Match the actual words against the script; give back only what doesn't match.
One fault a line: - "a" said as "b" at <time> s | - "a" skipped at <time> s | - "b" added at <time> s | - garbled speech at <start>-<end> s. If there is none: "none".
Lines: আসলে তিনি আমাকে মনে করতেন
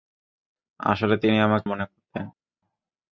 none